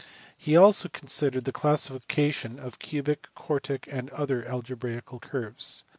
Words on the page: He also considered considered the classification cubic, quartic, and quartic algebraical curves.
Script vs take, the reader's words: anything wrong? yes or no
yes